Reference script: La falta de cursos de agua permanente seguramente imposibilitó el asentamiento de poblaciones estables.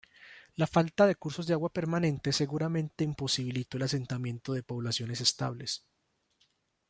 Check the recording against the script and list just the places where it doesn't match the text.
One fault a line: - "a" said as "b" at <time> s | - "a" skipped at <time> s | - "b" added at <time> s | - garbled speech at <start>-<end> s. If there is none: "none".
none